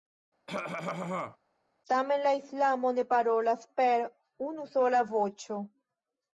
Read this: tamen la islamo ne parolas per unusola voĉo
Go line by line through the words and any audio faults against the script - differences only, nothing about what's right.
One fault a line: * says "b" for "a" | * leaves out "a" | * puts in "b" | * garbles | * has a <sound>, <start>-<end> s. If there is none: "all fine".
* has a cough, 0.5-1.4 s